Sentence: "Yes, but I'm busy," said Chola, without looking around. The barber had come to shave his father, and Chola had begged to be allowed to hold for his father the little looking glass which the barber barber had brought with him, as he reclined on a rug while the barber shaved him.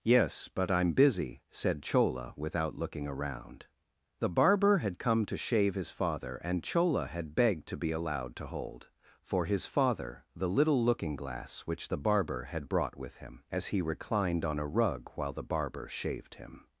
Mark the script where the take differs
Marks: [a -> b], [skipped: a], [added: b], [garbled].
"Yes, but I'm busy," said Chola, without looking around. The barber had come to shave his father, and Chola had begged to be allowed to hold for his father the little looking glass which the barber [skipped: barber] had brought with him, as he reclined on a rug while the barber shaved him.